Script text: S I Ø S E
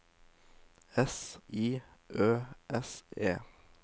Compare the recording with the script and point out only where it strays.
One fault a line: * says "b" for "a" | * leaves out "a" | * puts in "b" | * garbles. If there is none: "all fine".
all fine